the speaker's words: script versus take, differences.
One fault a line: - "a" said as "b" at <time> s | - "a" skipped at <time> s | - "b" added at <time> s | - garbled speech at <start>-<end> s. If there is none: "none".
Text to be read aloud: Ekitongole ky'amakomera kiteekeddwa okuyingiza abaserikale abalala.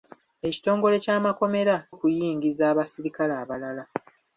- "kiteekeddwa" skipped at 1.8 s